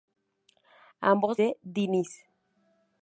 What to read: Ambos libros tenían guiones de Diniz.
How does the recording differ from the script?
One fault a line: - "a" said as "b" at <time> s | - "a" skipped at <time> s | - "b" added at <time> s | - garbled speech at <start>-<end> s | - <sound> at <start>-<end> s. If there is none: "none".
- "libros tenían guiones" skipped at 1.4 s